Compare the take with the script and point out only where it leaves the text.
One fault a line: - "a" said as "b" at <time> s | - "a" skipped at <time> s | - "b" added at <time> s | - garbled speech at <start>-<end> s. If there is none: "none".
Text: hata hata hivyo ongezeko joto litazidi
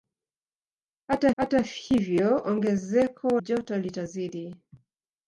none